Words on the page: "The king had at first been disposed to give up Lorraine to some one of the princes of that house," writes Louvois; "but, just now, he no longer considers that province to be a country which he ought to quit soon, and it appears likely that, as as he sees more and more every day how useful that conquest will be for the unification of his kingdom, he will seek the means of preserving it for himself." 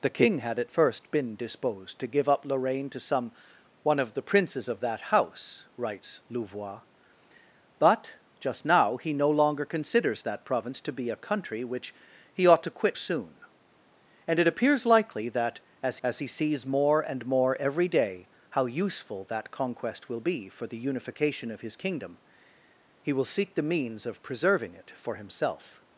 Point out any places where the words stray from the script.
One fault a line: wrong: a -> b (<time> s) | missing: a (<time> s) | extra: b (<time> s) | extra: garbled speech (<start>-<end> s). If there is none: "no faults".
no faults